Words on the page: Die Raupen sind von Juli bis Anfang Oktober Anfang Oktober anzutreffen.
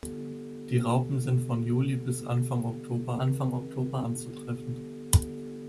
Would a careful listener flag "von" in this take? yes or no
no